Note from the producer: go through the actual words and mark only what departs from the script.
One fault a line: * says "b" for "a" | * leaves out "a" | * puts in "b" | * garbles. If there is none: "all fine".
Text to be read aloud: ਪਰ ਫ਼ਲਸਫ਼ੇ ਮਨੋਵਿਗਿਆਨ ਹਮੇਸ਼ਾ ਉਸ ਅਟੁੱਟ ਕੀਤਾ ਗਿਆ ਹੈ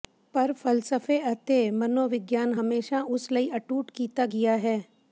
* puts in "ਅਤੇ"
* puts in "ਲਈ"